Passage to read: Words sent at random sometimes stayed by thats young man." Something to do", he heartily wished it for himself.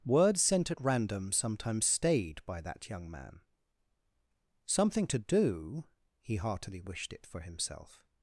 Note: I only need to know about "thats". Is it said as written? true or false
false